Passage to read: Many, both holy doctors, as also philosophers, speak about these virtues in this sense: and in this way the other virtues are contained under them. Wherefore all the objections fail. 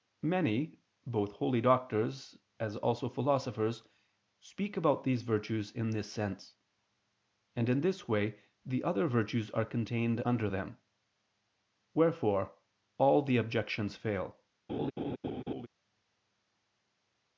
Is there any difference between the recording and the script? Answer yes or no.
no